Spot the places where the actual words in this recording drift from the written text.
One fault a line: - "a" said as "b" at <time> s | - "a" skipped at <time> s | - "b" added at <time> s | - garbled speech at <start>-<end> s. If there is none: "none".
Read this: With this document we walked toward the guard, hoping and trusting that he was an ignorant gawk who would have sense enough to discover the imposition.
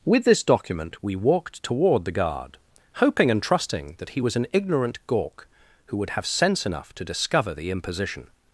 none